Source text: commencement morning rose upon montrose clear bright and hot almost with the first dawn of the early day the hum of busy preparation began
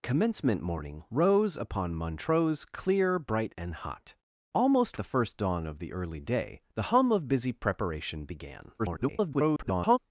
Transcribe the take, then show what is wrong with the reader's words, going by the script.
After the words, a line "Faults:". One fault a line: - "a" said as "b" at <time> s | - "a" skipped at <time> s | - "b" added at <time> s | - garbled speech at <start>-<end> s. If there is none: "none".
commencement morning rose upon montrose clear bright and hot almost the first dawn of the early day the hum of busy preparation began [garbled]
Faults:
- "with" skipped at 5.0 s
- garbled speech at 8.8-10.0 s